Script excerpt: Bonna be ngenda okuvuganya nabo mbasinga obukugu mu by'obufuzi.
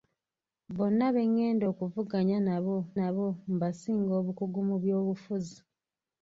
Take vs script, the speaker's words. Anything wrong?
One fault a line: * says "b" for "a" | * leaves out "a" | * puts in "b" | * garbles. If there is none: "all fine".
* puts in "nabo"